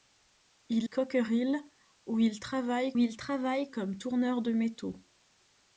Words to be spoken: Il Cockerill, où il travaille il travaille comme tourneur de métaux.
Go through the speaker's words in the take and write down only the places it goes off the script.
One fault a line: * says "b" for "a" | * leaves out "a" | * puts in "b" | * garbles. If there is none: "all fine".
all fine